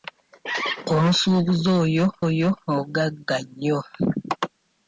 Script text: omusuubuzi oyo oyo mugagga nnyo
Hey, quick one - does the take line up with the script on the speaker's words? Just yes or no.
yes